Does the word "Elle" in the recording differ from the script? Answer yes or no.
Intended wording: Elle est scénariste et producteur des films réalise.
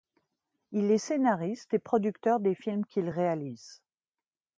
yes